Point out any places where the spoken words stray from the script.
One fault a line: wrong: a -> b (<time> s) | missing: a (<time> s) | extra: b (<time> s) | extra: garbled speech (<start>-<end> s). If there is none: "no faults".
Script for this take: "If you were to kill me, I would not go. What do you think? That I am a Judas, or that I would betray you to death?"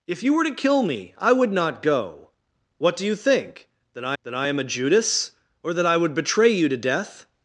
extra: that I (4.2 s)